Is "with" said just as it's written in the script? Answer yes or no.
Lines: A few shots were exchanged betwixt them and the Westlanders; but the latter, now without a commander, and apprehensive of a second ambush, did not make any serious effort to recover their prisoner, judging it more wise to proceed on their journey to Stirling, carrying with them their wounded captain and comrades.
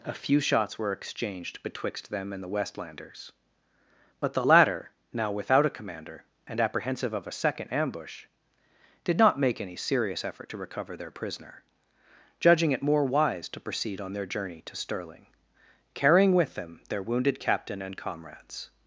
yes